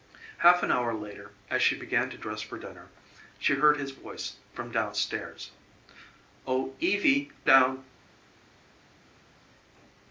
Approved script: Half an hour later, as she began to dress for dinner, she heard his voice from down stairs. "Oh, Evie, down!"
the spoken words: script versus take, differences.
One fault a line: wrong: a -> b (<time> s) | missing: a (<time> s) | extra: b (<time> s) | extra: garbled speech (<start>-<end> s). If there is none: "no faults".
no faults